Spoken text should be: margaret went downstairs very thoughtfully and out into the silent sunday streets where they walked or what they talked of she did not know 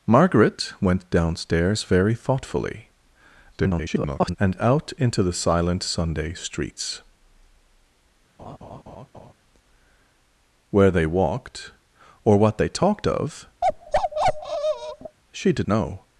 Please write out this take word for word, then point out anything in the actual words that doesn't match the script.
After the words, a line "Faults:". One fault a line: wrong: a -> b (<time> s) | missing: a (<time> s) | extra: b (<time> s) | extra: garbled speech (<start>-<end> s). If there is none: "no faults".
margaret went downstairs very thoughtfully [garbled] and out into the silent sunday streets where they walked or what they talked of she did know
Faults:
extra: garbled speech (3.5-4.4 s)
missing: not (15.7 s)